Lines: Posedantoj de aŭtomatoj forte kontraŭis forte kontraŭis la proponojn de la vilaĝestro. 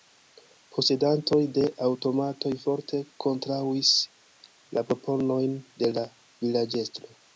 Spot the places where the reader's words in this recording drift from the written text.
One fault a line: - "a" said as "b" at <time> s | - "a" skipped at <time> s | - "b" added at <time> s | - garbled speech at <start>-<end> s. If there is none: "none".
- "forte kontraŭis" skipped at 3.9 s